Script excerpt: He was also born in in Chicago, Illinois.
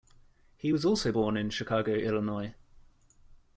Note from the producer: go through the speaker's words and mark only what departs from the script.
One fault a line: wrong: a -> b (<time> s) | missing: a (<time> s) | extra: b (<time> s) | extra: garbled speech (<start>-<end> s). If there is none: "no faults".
missing: in (1.5 s)